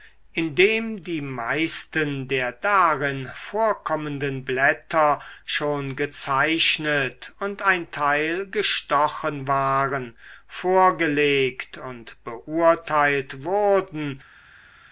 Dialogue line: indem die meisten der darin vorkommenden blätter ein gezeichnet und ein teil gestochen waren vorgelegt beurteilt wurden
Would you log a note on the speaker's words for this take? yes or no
yes